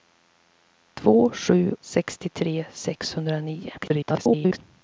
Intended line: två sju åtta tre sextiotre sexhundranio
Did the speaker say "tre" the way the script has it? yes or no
no